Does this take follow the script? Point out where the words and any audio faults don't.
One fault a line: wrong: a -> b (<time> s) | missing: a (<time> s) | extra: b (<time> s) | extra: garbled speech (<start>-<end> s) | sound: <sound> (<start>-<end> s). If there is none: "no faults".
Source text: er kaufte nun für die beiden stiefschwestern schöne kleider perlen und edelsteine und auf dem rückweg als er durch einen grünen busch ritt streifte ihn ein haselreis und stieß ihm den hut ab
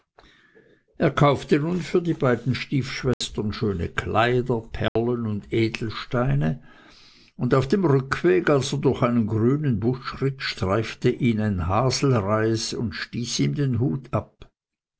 sound: dropout (3.1-3.2 s)
sound: dropout (4.9-5.0 s)